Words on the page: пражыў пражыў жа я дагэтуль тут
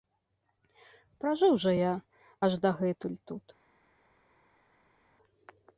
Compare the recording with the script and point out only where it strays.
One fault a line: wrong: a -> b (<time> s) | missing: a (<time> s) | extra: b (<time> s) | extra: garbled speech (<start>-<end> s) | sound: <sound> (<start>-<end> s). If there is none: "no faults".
missing: пражыў (1.5 s)
extra: аж (2.5 s)